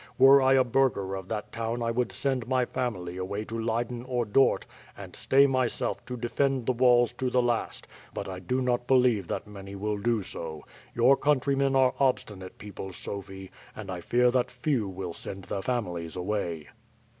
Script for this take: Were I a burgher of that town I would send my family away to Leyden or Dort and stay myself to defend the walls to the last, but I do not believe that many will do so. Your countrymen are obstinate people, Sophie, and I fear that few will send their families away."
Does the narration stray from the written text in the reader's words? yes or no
no